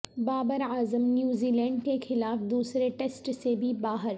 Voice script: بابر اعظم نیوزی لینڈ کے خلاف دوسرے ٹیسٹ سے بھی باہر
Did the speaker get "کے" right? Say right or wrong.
right